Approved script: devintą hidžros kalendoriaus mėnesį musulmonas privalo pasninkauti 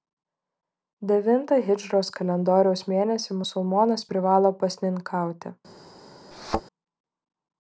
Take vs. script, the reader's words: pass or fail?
pass